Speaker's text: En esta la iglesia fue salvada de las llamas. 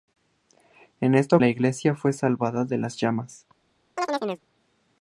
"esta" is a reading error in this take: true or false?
false